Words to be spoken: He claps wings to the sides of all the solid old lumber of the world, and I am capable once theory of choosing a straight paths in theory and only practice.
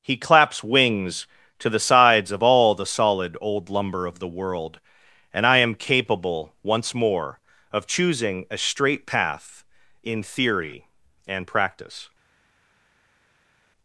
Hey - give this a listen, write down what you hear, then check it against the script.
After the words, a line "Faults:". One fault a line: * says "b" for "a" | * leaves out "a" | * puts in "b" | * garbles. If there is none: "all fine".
He claps wings to the sides of all the solid old lumber of the world, and I am capable once more of choosing a straight path in theory and practice.
Faults:
* says "more" for "theory"
* says "path" for "paths"
* leaves out "only"